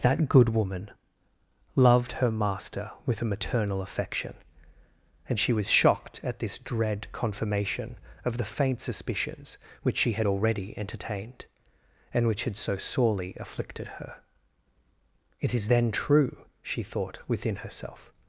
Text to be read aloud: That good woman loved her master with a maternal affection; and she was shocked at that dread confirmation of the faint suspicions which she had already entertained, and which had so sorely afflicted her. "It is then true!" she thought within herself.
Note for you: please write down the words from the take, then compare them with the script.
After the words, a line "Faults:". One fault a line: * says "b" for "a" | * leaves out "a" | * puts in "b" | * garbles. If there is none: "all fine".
That good woman loved her master with a maternal affection; and she was shocked at this dread confirmation of the faint suspicions which she had already entertained, and which had so sorely afflicted her. "It is then true!" she thought within herself.
Faults:
* says "this" for "that"